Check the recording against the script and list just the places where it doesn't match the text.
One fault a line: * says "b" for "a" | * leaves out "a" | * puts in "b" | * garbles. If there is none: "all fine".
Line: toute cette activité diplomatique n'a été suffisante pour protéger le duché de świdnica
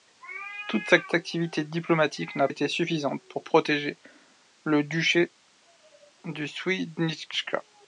all fine